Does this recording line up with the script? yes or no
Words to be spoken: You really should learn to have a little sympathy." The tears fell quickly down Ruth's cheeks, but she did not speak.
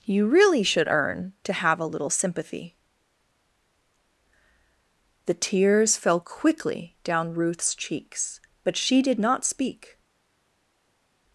no